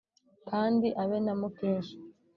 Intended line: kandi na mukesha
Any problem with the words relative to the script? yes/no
yes